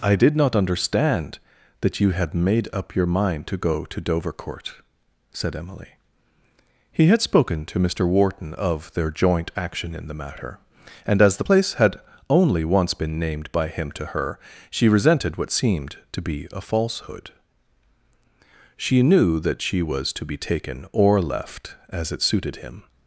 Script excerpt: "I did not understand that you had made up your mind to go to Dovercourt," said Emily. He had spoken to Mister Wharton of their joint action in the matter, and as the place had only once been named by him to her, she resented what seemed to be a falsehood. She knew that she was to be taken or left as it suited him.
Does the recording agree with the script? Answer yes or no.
yes